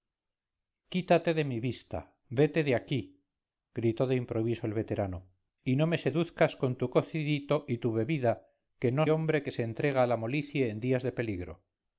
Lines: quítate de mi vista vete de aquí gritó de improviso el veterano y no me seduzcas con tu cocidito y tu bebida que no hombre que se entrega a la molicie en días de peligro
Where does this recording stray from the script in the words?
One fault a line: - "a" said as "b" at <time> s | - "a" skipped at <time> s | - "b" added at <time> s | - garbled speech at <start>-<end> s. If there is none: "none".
none